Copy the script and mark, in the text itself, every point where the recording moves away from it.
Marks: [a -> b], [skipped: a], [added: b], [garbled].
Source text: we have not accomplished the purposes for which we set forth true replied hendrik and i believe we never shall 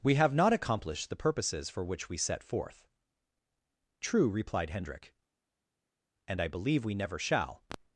we have not accomplished the purposes for which we set forth true replied hendrik and i believe we never shall